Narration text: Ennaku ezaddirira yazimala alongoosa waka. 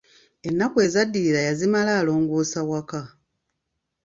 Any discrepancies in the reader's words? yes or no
no